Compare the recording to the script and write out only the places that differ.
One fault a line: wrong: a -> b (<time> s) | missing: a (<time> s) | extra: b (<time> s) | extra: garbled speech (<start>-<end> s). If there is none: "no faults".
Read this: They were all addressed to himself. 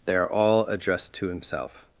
wrong: were -> are (0.1 s)